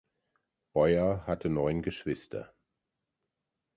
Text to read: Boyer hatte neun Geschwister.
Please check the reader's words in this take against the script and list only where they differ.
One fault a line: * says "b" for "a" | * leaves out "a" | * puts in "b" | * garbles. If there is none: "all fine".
all fine